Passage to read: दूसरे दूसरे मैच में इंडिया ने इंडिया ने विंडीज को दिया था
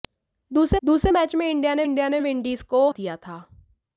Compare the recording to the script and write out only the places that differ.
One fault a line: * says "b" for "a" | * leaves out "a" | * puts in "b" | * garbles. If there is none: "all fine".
all fine